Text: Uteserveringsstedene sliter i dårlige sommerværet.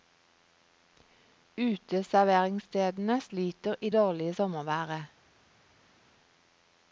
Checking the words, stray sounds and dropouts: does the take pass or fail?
pass